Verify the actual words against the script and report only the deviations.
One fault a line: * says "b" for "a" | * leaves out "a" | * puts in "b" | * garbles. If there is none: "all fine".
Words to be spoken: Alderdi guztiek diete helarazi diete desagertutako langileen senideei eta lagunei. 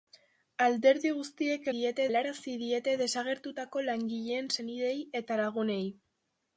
all fine